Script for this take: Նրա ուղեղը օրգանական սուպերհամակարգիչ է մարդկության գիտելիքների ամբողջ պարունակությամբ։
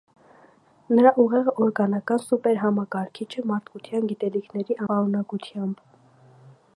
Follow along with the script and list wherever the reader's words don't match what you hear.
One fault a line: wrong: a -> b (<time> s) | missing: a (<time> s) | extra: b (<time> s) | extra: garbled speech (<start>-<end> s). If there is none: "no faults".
missing: ամբողջ (4.8 s)